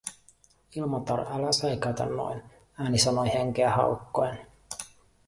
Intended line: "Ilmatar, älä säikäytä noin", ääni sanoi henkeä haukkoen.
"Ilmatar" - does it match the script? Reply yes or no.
yes